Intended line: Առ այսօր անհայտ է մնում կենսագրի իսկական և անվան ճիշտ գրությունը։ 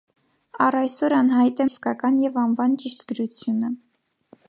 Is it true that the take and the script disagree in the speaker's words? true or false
true